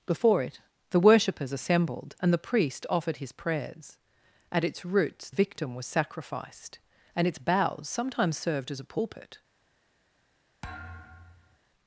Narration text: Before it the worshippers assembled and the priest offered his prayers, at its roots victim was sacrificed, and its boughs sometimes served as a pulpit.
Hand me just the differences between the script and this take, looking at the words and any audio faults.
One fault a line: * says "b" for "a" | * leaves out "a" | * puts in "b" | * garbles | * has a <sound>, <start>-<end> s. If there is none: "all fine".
* has a thud, 10.6-11.6 s